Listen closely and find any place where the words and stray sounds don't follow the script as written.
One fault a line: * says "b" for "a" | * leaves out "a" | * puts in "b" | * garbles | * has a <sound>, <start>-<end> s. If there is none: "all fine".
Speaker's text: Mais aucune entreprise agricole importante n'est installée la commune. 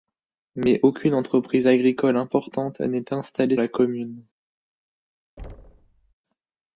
* has a thud, 5.4-6.1 s